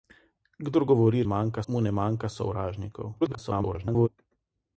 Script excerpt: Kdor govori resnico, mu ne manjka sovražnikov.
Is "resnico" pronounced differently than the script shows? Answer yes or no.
yes